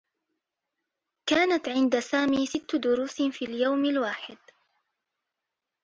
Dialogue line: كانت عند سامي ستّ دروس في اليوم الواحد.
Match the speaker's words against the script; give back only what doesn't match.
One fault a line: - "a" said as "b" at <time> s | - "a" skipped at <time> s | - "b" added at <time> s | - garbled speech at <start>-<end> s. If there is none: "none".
none